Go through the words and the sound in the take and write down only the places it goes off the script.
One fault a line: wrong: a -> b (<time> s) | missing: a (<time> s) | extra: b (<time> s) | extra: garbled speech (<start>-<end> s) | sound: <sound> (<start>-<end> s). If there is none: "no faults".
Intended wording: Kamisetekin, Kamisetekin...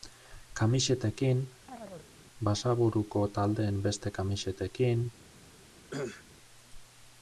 sound: chirp (1.7-2.1 s)
extra: Basaburuko taldeen beste (2.5 s)
sound: cough (5.9-6.2 s)